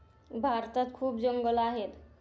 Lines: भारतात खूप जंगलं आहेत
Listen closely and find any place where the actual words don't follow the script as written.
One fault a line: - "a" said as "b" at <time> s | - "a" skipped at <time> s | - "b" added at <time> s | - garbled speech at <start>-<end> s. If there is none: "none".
none